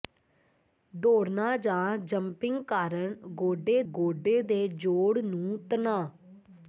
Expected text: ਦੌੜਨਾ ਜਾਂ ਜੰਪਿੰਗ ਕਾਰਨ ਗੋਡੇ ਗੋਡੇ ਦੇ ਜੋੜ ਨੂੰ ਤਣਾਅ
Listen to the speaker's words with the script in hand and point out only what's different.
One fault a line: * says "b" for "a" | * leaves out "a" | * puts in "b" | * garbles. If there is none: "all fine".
all fine